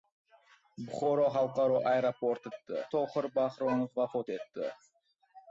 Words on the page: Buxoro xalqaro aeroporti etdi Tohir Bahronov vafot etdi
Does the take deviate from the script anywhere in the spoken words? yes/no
no